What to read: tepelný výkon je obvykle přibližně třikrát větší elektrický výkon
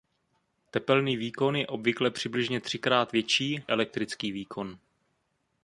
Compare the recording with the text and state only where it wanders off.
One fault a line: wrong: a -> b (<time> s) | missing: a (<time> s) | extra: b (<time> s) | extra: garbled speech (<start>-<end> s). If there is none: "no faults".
no faults